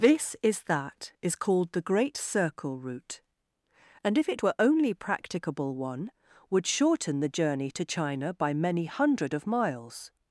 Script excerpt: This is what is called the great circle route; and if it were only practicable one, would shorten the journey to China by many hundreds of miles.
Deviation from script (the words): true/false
true